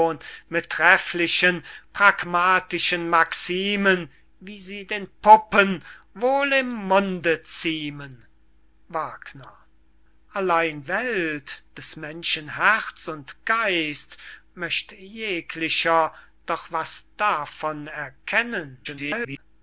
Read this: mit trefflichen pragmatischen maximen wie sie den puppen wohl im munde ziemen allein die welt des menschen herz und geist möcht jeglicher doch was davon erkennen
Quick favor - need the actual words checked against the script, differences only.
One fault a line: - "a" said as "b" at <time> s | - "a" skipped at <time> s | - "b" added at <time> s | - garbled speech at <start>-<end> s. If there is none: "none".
- "die" skipped at 10.8 s
- garbled speech at 18.8-19.4 s